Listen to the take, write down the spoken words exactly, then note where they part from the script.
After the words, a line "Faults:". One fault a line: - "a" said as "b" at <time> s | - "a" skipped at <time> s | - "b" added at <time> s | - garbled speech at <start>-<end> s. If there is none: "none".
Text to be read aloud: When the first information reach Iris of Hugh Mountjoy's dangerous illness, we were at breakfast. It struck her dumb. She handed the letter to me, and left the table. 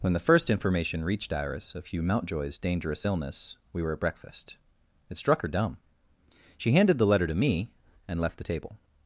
When the first information reached Iris of Hugh Mountjoy's dangerous illness, we were at breakfast. It struck her dumb. She handed the letter to me, and left the table.
Faults:
- "reach" said as "reached" at 1.1 s